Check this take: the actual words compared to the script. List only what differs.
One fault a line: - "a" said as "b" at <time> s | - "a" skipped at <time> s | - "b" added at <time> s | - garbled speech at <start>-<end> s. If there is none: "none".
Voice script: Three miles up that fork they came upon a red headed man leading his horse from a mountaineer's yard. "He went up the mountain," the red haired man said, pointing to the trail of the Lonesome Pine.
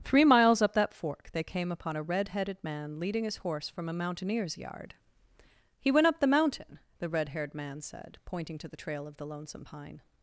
none